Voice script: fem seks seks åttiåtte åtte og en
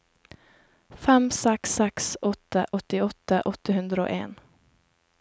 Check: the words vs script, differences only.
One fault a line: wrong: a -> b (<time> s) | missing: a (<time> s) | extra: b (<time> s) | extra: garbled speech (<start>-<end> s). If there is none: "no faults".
extra: åtte (2.3 s)
extra: hundre (3.8 s)